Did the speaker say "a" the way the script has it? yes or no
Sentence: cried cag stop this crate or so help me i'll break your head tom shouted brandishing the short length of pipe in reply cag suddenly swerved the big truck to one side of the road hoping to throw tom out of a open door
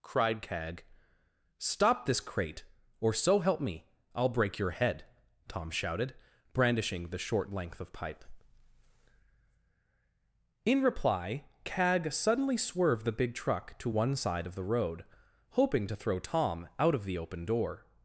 no